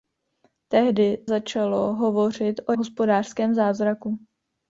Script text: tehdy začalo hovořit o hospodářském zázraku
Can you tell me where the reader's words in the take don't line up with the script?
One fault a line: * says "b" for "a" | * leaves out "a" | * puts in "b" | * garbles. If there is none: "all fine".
all fine